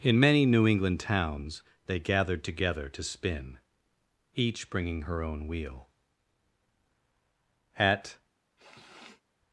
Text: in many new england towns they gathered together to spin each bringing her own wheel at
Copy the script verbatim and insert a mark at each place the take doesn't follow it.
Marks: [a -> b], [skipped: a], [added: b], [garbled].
in many new england towns they gathered together to spin each bringing her own wheel at